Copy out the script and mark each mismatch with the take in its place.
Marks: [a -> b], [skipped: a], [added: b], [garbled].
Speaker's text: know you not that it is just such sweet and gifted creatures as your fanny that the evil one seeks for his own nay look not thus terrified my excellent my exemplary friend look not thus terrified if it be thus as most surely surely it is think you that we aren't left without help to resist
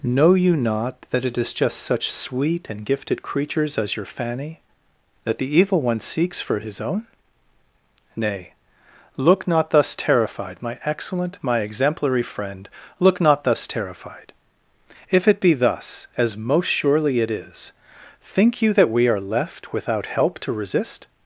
know you not that it is just such sweet and gifted creatures as your fanny that the evil one seeks for his own nay look not thus terrified my excellent my exemplary friend look not thus terrified if it be thus as most surely [skipped: surely] it is think you that we [aren't -> are] left without help to resist